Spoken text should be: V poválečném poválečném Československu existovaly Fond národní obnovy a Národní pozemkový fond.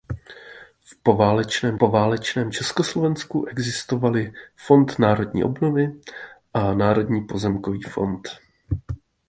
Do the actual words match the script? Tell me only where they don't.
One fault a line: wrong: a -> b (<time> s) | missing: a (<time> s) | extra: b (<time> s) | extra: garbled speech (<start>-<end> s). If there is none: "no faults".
no faults